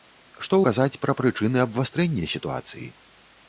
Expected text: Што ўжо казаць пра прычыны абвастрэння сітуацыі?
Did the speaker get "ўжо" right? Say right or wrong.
wrong